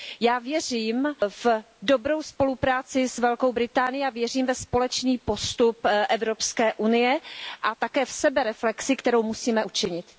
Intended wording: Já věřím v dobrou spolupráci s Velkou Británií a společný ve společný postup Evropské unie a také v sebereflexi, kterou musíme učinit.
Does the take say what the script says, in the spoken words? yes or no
no